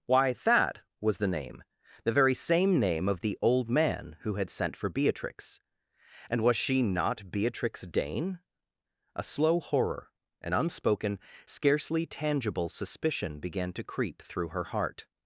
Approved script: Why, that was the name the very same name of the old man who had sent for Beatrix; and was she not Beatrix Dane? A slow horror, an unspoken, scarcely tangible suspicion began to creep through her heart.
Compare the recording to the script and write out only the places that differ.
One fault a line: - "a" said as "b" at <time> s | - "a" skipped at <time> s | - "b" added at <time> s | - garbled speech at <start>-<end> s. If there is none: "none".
none